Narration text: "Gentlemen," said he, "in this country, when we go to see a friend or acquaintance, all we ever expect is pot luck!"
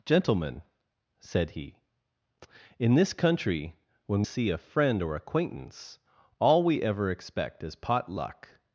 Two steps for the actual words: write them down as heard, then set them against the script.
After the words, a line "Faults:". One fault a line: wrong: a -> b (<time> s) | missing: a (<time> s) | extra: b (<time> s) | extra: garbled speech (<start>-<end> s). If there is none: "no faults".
"Gentlemen," said he, "in this country, when see a friend or acquaintance, all we ever expect is pot luck!"
Faults:
missing: we go to (4.2 s)